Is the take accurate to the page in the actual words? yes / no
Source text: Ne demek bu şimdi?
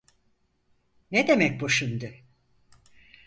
yes